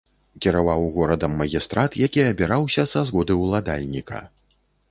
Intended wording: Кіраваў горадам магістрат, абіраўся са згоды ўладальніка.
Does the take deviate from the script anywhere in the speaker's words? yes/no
yes